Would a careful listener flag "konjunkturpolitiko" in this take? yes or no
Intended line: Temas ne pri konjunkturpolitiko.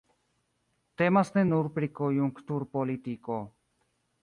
no